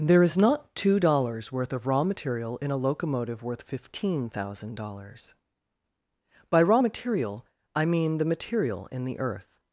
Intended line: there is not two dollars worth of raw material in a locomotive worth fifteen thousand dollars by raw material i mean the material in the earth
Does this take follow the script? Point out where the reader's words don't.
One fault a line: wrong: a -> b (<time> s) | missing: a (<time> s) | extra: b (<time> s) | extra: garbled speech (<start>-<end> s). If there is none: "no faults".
no faults